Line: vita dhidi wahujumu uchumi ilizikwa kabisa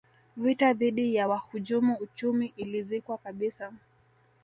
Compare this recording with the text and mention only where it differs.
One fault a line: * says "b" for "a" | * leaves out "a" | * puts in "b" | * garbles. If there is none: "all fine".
* puts in "ya"